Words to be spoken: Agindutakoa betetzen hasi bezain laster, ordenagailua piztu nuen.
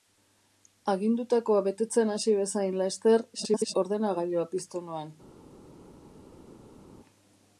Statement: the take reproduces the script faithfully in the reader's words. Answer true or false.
false